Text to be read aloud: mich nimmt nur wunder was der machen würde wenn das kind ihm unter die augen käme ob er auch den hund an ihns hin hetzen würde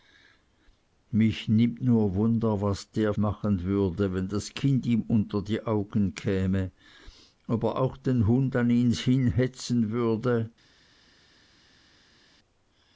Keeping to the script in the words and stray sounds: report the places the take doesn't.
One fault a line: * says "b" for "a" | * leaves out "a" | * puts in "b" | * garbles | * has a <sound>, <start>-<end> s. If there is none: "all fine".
all fine